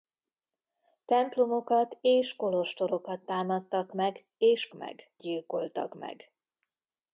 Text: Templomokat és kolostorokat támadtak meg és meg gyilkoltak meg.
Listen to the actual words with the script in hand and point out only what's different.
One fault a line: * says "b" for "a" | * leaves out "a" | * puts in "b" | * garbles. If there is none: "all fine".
all fine